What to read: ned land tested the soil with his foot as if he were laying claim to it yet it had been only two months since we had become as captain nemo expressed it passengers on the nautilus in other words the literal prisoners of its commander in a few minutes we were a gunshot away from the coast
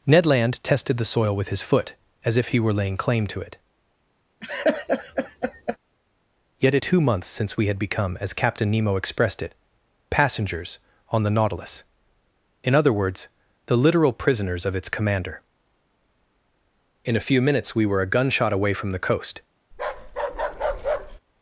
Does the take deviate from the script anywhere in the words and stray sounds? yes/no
yes